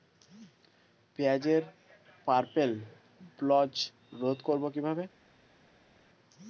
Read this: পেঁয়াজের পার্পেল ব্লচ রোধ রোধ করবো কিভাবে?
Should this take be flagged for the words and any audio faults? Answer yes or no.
yes